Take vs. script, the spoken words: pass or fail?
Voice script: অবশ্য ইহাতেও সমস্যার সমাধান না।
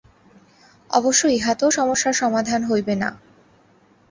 fail